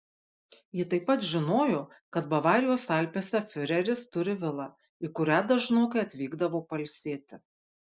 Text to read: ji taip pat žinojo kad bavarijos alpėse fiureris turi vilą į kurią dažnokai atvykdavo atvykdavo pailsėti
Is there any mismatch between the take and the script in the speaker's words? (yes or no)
yes